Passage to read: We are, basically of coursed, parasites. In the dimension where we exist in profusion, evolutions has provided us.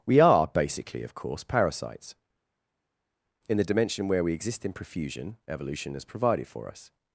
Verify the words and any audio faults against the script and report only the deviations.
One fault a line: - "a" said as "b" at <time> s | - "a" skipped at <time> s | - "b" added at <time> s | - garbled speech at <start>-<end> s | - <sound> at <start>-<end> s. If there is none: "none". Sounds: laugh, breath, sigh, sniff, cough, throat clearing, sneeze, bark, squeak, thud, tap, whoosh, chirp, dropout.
- "coursed" said as "course" at 1.1 s
- "evolutions" said as "evolution" at 5.5 s
- "for" added at 6.5 s